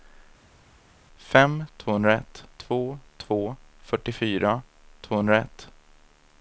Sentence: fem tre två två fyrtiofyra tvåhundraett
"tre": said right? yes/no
no